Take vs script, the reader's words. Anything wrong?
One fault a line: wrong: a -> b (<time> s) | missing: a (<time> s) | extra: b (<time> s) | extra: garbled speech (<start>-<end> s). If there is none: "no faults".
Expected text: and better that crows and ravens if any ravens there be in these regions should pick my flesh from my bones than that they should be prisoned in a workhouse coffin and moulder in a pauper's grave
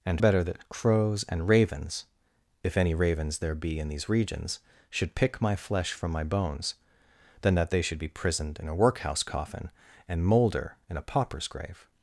no faults